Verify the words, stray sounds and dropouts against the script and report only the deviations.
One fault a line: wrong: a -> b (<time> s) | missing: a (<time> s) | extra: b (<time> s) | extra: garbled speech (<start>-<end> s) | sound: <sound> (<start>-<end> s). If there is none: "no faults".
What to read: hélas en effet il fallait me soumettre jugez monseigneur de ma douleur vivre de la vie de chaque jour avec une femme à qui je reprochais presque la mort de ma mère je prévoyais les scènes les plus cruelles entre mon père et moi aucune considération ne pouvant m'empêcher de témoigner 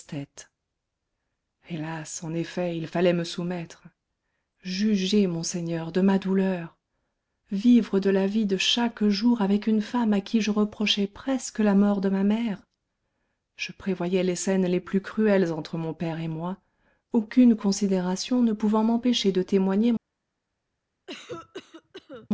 sound: cough (21.1-22.3 s)